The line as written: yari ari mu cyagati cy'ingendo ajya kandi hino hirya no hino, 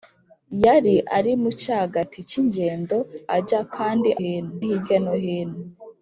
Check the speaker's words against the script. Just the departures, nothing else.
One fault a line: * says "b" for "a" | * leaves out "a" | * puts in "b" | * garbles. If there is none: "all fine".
all fine